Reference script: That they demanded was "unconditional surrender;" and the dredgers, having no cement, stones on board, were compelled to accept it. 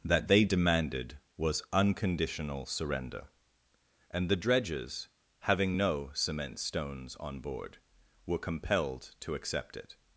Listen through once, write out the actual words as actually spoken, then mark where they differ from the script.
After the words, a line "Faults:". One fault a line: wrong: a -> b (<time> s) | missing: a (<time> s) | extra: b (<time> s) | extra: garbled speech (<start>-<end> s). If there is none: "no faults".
That they demanded was "unconditional surrender;" and the dredgers, having no cement, stones on board, were compelled to accept it.
Faults:
no faults